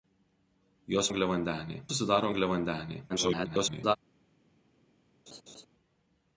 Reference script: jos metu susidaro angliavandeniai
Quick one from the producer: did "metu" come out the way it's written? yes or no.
no